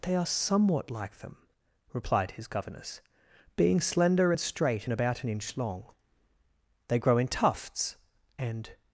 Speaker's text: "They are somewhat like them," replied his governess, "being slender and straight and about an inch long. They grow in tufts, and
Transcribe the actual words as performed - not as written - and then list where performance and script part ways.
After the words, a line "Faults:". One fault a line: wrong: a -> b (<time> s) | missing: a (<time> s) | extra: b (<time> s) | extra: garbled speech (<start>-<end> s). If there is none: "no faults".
"They are somewhat like them," replied his governess, "being slender and straight and about an inch long. They grow in tufts, and
Faults:
no faults